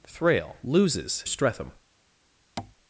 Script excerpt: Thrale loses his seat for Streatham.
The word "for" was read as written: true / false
false